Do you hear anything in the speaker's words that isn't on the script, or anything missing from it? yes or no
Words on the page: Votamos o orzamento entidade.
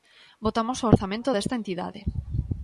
yes